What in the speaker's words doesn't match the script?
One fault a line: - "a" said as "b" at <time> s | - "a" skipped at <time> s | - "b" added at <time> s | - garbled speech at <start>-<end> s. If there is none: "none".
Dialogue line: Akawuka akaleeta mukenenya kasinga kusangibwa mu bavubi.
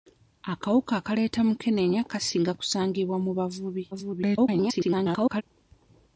- garbled speech at 3.9-5.4 s